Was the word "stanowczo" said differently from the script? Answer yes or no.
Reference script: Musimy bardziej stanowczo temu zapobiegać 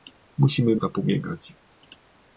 yes